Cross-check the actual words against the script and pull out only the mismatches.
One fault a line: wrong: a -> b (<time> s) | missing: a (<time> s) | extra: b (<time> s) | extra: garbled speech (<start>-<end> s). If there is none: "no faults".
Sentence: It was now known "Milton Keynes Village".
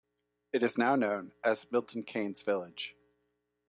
wrong: was -> is (0.6 s)
extra: as (1.4 s)